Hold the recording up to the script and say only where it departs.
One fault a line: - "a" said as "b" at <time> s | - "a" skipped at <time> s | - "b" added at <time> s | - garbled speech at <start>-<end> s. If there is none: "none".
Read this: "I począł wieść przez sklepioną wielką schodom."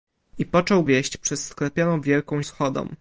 none